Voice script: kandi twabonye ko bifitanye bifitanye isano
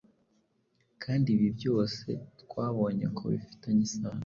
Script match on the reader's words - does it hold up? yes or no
no